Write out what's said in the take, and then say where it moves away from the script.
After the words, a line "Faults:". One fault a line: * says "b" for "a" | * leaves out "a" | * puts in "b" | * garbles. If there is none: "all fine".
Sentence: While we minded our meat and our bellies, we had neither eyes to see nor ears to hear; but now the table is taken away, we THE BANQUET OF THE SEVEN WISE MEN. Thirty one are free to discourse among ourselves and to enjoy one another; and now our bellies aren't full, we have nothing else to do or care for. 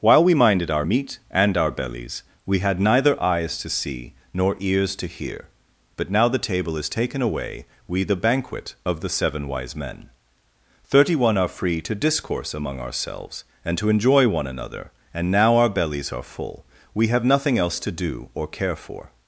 While we minded our meat and our bellies, we had neither eyes to see nor ears to hear; but now the table is taken away, we THE BANQUET OF THE SEVEN WISE MEN. Thirty one are free to discourse among ourselves and to enjoy one another; and now our bellies are full, we have nothing else to do or care for.
Faults:
* says "are" for "aren't"